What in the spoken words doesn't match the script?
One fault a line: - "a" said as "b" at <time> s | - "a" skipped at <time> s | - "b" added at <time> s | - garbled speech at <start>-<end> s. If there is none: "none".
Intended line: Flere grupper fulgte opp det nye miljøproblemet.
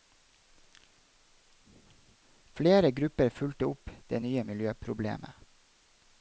none